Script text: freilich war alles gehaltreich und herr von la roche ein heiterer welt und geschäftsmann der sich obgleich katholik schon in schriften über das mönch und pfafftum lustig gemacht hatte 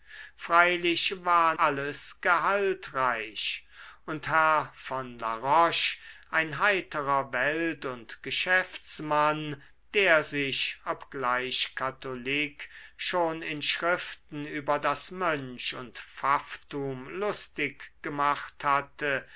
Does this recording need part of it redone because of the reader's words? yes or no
no